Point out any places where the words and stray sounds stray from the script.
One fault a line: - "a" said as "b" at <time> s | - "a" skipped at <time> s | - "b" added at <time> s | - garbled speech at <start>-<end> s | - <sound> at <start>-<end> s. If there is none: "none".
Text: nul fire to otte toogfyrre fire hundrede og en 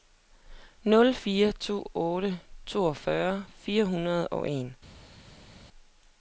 none